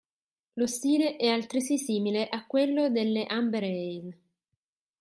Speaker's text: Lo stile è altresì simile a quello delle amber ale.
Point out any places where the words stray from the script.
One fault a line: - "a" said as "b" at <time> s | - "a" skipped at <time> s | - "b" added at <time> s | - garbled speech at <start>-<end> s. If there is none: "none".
none